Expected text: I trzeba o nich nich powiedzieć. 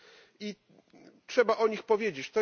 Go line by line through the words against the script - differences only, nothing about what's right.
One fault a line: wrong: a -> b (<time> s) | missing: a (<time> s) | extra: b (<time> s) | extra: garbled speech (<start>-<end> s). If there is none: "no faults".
missing: nich (1.8 s)